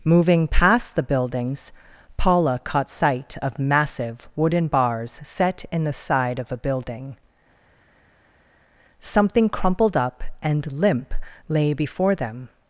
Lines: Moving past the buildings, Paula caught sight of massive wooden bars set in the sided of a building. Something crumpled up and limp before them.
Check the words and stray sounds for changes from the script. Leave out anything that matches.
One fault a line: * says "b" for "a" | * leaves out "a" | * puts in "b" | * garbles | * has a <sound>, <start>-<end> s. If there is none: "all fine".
* says "side" for "sided"
* puts in "lay"